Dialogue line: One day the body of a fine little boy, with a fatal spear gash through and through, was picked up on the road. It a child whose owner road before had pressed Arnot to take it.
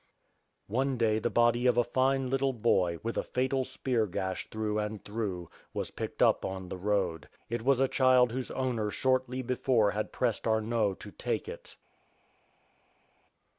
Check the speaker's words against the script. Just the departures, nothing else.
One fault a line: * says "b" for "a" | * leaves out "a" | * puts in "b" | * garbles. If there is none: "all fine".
* puts in "was"
* says "shortly" for "road"